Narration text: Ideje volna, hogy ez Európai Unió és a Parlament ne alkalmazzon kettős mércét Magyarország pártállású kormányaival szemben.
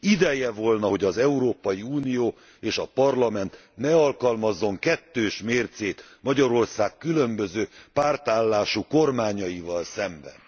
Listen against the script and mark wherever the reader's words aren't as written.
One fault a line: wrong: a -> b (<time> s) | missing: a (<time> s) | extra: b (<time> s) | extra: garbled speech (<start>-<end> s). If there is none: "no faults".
wrong: ez -> az (1.0 s)
extra: különböző (7.0 s)